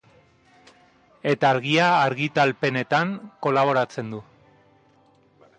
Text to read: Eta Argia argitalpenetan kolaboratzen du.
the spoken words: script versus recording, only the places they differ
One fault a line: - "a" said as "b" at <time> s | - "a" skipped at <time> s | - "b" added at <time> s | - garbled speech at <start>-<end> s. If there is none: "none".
none